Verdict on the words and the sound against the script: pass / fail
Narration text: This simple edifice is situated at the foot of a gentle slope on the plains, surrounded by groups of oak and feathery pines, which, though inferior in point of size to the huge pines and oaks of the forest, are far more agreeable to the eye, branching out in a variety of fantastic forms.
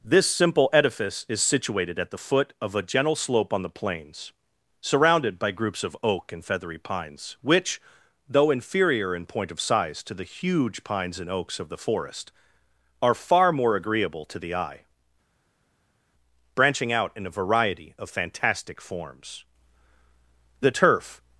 fail